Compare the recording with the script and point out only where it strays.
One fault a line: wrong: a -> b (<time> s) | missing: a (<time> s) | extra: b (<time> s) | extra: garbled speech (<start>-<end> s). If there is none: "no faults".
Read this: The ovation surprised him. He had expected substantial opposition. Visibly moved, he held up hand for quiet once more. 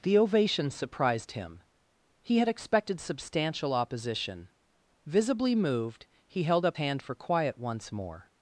no faults